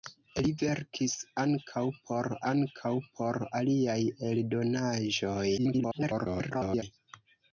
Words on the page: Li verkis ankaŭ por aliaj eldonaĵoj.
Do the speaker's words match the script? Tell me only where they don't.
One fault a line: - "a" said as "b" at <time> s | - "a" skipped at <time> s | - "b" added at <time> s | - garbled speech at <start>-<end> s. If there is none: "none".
- "ankaŭ por" added at 2.5 s
- garbled speech at 5.6-6.8 s